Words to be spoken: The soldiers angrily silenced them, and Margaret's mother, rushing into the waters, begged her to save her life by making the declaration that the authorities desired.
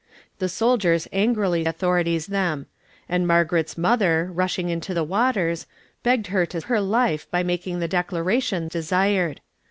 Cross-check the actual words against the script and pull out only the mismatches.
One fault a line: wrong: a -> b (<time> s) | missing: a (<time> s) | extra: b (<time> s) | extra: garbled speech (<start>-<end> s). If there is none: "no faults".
wrong: silenced -> authorities (1.7 s)
missing: save (6.6 s)
missing: that the authorities (8.7 s)